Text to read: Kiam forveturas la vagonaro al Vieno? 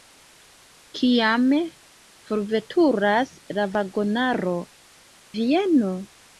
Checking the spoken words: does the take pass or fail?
fail